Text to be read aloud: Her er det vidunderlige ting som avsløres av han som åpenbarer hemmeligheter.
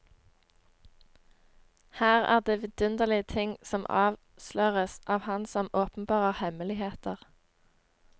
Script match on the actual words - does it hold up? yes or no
yes